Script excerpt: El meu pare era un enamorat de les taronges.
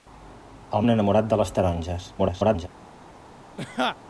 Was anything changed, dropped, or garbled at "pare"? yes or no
yes